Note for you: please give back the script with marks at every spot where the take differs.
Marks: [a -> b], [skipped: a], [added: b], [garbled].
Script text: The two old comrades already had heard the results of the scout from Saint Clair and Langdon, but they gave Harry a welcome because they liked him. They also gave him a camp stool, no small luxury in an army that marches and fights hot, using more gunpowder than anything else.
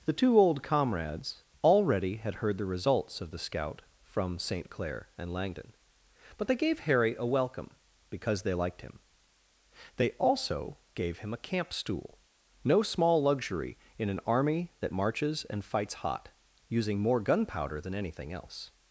The two old comrades already had heard the results of the scout from Saint Clair and Langdon, but they gave Harry a welcome because they liked him. They also gave him a camp stool, no small luxury in an army that marches and fights hot, using more gunpowder than anything else.